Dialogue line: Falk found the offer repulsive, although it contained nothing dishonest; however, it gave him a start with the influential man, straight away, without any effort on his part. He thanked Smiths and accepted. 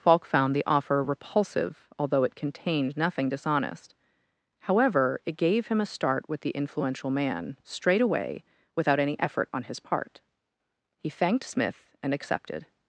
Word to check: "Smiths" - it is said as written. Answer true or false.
false